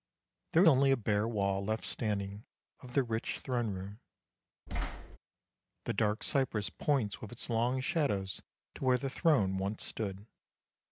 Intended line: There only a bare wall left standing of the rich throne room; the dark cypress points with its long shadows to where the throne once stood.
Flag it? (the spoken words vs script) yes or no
no